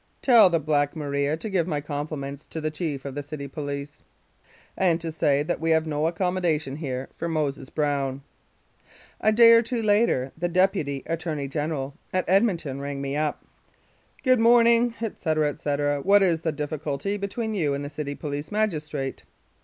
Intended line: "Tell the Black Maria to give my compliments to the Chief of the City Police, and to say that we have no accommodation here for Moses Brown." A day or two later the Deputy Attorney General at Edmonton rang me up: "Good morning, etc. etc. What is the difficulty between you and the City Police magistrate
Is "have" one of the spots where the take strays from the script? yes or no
no